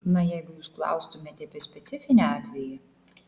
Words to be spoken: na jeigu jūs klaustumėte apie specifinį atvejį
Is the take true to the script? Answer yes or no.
yes